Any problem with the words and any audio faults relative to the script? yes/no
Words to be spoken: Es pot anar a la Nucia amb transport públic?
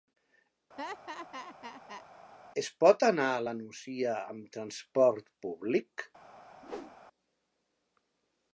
yes